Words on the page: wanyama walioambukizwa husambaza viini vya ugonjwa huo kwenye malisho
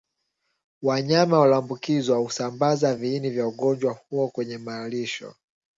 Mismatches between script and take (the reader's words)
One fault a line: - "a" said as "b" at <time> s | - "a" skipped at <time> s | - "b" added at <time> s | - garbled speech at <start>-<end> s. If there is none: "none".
none